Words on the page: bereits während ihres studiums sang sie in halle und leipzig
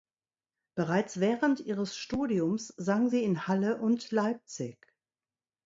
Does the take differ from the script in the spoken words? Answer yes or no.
no